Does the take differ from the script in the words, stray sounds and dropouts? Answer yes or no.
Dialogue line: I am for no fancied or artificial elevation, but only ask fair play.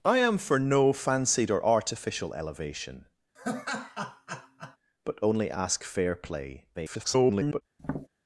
yes